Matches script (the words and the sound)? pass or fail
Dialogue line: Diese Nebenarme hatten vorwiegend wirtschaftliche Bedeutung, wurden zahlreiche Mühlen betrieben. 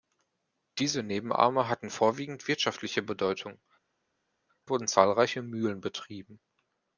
pass